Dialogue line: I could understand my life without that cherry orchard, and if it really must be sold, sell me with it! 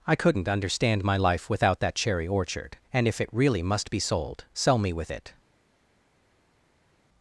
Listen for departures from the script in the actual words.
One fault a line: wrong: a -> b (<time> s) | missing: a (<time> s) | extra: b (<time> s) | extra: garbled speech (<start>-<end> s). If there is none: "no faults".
wrong: could -> couldn't (0.1 s)